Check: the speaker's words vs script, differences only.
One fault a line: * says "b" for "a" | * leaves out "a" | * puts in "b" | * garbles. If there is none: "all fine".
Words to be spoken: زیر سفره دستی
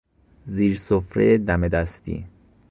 * puts in "دم"